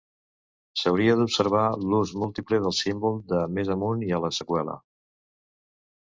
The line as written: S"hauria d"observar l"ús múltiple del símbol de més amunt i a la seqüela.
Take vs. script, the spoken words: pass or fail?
pass